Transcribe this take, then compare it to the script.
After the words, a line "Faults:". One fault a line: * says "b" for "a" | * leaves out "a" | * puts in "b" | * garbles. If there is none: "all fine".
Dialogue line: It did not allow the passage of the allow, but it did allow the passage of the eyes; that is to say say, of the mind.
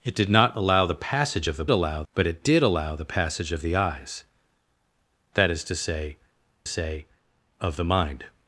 It did not allow the passage of the allow, but it did allow the passage of the eyes; that is to say say, of the mind.
Faults:
all fine